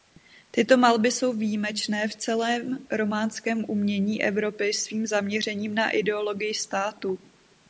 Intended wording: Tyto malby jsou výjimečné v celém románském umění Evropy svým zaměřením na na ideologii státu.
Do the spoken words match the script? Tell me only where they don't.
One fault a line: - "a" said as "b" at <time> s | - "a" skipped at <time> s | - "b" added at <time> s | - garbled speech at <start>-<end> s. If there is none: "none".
- "na" skipped at 5.9 s